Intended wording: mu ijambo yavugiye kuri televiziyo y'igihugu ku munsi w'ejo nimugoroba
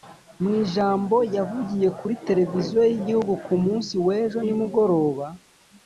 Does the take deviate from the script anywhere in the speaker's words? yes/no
no